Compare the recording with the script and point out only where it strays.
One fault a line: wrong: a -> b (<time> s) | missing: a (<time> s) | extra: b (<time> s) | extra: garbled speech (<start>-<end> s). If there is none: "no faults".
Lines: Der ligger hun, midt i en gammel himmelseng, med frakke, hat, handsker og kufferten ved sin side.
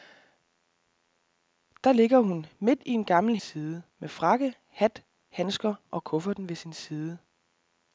wrong: himmelseng -> side (3.4 s)